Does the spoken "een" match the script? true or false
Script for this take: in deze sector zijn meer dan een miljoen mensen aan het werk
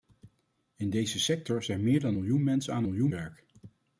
false